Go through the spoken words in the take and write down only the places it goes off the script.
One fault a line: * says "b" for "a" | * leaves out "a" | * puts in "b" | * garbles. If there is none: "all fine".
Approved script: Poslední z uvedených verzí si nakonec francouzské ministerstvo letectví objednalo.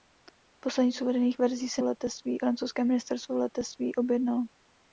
* says "letectví" for "nakonec"